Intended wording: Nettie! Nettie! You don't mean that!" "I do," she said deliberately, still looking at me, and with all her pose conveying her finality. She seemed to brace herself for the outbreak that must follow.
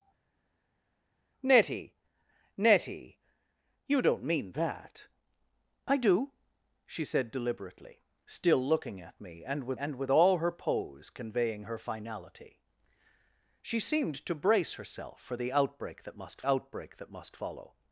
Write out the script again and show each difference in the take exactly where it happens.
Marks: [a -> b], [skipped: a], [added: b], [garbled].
Nettie! Nettie! You don't mean that!" "I do," she said deliberately, still looking at me, and with [added: and with] all her pose conveying her finality. She seemed to brace herself for the outbreak that must [added: outbreak that must] follow.